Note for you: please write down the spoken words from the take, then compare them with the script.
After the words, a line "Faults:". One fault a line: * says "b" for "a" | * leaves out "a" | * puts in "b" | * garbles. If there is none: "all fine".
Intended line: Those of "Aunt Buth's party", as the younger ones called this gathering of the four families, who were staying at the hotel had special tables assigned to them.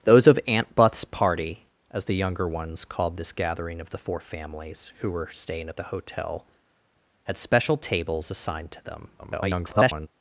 Those of "Aunt Buth's party", as the younger ones called this gathering of the four families, who were staying at the hotel had special tables assigned to them. [garbled]
Faults:
* garbles